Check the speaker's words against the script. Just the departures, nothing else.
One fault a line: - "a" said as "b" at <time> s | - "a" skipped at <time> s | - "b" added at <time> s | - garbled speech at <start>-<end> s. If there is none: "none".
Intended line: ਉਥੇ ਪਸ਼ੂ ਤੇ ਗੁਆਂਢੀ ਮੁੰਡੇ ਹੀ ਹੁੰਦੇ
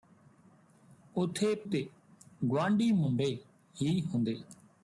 - "ਪਸ਼ੂ" skipped at 1.5 s